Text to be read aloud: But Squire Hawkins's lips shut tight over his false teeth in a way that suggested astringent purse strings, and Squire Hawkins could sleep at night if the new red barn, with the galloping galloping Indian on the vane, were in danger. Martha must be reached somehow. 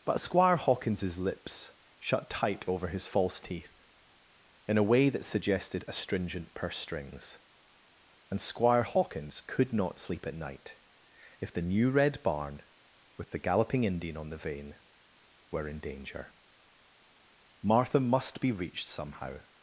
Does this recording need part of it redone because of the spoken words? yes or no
yes